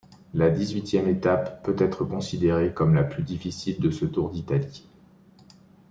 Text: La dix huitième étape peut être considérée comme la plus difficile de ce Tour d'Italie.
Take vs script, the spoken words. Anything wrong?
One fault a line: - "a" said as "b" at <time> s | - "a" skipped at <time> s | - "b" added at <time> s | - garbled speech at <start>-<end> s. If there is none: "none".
none